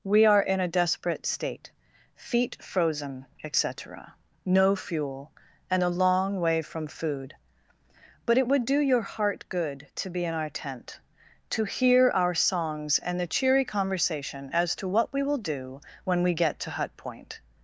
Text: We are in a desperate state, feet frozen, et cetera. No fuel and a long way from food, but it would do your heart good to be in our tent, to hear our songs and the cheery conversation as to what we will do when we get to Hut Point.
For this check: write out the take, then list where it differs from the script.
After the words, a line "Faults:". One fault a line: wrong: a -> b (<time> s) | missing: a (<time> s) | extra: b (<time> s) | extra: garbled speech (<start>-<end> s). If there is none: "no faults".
We are in a desperate state, feet frozen, et cetera. No fuel and a long way from food, but it would do your heart good to be in our tent, to hear our songs and the cheery conversation as to what we will do when we get to Hut Point.
Faults:
no faults